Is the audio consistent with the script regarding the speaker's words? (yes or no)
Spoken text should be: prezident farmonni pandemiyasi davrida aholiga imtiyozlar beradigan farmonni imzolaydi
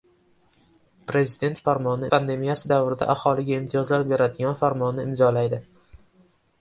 yes